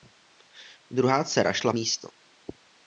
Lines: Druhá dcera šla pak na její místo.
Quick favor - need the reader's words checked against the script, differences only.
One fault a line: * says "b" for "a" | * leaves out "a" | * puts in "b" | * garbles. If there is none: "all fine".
* leaves out "pak na její"